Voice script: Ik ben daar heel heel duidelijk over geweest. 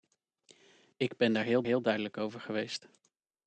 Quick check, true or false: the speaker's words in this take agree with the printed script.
true